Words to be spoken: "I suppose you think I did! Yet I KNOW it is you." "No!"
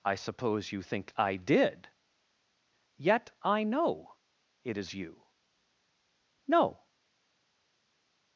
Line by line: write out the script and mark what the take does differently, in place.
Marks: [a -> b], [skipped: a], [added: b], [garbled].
"I suppose you think I did! Yet I KNOW it is you." "No!"